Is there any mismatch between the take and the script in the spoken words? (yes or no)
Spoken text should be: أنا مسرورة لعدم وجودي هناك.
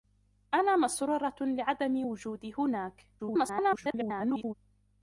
yes